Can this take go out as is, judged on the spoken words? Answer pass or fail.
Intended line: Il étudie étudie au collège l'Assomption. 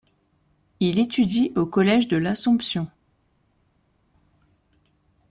fail